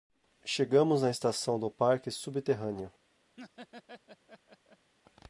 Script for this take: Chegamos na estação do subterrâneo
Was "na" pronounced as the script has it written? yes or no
yes